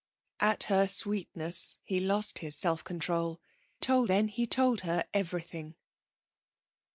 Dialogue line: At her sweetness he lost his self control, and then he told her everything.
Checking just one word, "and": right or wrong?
wrong